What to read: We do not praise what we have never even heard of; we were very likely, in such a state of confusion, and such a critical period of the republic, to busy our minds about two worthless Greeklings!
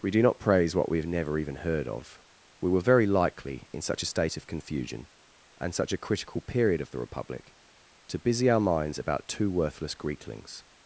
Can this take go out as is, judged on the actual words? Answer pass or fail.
pass